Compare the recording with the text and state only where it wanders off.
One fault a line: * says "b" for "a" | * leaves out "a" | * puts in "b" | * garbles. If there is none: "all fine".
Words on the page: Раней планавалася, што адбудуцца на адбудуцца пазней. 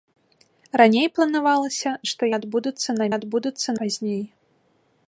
all fine